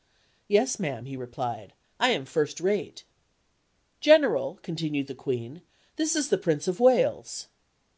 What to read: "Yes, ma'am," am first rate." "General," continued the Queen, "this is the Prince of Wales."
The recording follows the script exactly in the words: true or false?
false